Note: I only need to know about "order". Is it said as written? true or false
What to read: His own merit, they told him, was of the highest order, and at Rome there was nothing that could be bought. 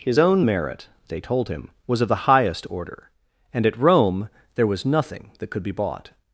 true